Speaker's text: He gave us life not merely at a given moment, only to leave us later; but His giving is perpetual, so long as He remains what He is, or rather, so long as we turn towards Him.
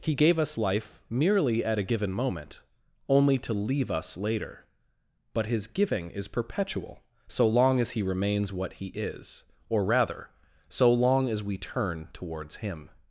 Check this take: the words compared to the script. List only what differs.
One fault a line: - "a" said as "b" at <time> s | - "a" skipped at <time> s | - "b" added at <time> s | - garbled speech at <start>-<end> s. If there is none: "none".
- "not" skipped at 1.0 s